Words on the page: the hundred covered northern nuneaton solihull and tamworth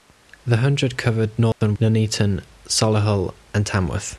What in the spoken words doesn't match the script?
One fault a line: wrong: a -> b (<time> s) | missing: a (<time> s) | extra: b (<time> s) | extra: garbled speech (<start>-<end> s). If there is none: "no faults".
no faults